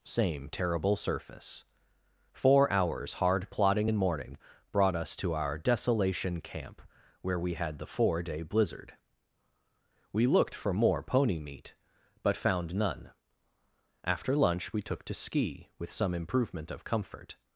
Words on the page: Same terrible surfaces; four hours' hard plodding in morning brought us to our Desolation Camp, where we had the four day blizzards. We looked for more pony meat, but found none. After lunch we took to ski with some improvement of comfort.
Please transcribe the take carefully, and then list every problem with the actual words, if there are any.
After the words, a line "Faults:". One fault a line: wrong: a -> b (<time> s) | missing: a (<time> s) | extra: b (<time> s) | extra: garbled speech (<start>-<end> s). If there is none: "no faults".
Same terrible surface; four hours' hard plodding in morning brought us to our Desolation Camp, where we had the four day blizzard. We looked for more pony meat, but found none. After lunch we took to ski with some improvement of comfort.
Faults:
wrong: surfaces -> surface (0.9 s)
wrong: blizzards -> blizzard (8.4 s)